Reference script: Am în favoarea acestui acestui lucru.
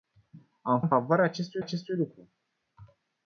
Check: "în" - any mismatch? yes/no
no